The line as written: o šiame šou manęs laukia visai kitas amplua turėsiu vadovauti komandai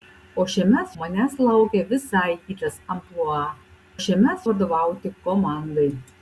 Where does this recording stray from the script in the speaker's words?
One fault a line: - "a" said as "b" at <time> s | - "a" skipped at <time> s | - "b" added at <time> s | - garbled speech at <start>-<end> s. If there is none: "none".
- "šou" skipped at 0.8 s
- "turėsiu" said as "šiame" at 4.0 s